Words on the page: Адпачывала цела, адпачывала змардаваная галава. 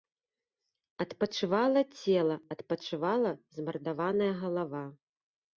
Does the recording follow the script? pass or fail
pass